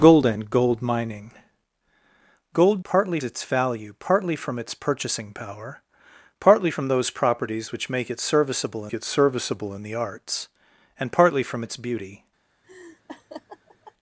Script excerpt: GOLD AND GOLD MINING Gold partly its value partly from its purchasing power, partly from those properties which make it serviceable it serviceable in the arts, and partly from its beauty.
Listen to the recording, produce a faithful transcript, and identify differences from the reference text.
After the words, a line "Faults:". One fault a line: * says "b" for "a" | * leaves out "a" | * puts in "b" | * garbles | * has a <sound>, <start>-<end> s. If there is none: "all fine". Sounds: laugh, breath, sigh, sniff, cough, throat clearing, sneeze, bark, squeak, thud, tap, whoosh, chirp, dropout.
GOLD AND GOLD MINING Gold partly its value partly from its purchasing power, partly from those properties which make it serviceable it serviceable in the arts, and partly from its beauty.
Faults:
* has a laugh, 12.6-13.9 s